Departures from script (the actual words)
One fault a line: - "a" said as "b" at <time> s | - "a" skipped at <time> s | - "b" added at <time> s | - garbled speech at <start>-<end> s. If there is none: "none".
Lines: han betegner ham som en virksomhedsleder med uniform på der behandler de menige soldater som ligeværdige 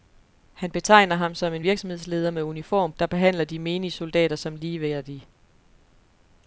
- "på" skipped at 2.9 s